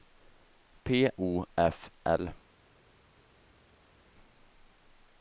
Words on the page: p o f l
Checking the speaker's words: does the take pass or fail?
pass